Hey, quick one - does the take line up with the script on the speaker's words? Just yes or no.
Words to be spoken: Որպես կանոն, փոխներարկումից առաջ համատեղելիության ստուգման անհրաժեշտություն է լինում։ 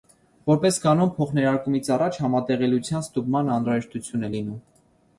yes